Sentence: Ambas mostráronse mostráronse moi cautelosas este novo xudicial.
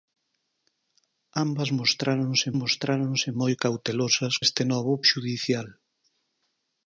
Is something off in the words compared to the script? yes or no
no